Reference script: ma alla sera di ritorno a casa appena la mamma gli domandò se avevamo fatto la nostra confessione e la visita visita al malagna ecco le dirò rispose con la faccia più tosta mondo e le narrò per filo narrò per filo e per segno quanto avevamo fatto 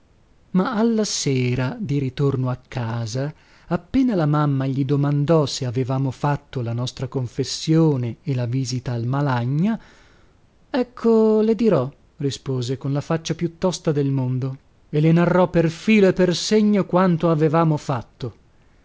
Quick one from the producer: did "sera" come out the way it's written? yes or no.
yes